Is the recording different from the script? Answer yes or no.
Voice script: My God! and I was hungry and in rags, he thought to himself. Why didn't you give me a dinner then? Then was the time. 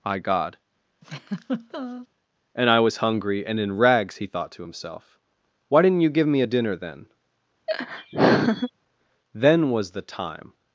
no